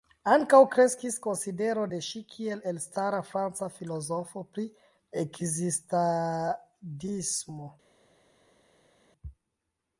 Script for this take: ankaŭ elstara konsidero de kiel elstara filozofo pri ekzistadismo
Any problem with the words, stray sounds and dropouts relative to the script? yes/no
yes